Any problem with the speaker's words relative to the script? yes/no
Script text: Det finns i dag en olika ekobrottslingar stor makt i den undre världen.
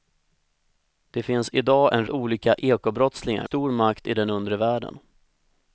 no